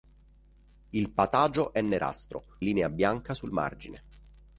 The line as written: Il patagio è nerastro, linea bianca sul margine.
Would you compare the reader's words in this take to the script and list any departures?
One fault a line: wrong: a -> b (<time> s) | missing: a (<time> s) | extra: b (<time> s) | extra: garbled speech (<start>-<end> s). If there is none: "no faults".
no faults